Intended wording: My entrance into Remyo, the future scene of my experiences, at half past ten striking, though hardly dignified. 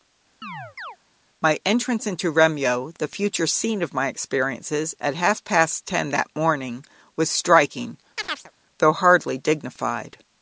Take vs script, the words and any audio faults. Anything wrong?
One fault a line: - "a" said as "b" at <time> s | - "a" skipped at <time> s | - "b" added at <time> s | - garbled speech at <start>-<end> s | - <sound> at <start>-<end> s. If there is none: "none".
- chirp at 0.4-1.0 s
- "that morning was" added at 6.1 s
- chirp at 8.2-8.5 s